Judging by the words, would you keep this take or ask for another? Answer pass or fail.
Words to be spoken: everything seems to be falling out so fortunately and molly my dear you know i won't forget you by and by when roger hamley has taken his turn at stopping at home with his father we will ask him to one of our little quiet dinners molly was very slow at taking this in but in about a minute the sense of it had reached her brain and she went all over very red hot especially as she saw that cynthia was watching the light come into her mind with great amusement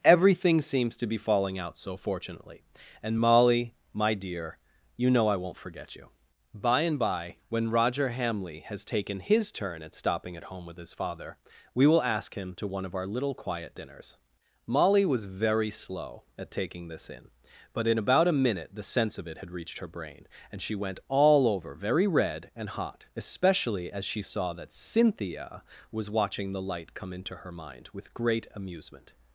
fail